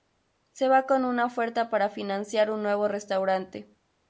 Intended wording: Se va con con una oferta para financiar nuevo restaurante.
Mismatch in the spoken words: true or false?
true